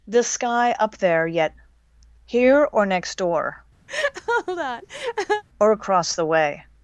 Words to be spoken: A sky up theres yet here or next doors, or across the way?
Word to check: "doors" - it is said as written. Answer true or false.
false